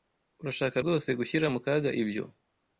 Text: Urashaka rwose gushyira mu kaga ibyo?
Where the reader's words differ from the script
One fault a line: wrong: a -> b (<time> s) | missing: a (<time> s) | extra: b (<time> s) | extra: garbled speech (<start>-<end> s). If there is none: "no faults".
no faults